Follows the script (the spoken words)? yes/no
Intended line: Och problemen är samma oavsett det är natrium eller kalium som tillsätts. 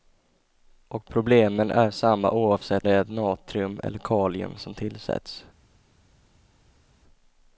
yes